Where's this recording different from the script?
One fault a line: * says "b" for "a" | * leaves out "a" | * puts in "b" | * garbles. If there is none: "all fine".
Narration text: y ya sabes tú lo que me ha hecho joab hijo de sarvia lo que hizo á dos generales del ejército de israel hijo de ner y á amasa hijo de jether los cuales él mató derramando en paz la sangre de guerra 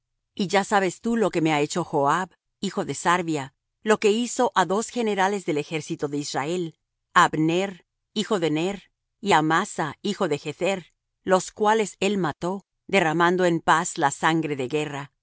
* puts in "á abner"